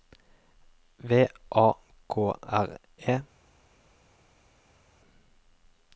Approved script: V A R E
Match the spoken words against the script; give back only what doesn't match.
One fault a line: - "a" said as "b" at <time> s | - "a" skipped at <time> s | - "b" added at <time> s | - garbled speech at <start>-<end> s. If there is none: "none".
- "K" added at 2.1 s